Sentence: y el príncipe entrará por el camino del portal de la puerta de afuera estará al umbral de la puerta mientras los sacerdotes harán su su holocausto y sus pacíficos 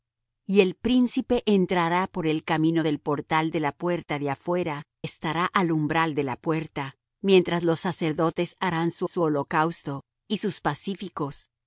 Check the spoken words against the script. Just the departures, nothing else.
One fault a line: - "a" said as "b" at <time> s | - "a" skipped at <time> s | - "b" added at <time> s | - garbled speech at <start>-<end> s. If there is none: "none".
none